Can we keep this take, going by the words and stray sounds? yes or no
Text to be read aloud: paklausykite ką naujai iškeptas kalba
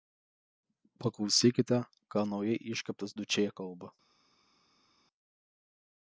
no